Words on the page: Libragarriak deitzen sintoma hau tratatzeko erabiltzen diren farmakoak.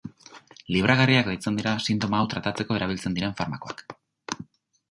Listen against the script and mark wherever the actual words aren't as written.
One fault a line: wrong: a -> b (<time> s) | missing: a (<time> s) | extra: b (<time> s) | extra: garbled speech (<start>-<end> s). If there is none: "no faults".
extra: dira (1.6 s)